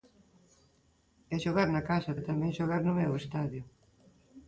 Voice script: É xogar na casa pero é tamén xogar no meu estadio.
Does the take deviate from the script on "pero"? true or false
true